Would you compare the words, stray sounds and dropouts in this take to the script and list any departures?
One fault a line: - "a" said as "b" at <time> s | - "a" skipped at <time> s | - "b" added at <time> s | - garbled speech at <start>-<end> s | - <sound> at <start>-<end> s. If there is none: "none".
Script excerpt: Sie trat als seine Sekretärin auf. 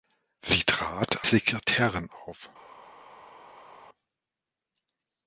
- "als seine" skipped at 1.3 s